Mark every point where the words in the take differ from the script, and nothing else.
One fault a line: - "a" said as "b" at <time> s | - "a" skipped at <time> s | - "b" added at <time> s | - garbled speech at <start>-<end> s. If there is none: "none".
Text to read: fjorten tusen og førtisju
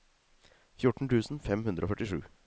- "fem hundre" added at 1.5 s